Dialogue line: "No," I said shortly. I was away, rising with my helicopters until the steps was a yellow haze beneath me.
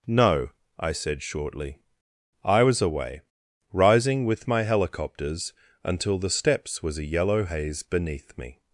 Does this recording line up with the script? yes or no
yes